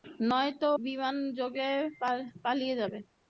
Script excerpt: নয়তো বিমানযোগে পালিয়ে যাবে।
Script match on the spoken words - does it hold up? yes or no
yes